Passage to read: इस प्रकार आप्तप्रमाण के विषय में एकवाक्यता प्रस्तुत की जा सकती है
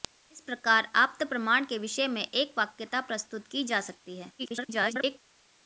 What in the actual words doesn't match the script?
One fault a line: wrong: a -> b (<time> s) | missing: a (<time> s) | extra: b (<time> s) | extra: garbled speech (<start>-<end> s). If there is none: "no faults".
extra: garbled speech (4.4-5.2 s)